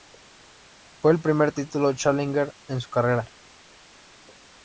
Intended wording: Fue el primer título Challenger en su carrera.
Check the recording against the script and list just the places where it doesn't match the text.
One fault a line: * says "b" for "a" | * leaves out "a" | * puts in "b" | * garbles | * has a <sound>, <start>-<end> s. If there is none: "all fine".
all fine